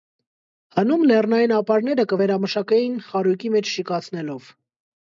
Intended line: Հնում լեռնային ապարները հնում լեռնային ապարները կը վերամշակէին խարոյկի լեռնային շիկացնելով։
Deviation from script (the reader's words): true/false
true